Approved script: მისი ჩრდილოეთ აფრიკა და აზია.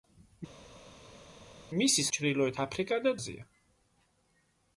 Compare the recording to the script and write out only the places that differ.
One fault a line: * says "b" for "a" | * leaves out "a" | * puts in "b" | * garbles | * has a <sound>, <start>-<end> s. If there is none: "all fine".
all fine